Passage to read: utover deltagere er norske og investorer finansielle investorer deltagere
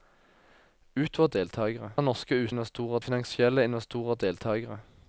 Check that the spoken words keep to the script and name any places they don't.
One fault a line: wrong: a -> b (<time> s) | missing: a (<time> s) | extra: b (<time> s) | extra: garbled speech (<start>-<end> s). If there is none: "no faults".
no faults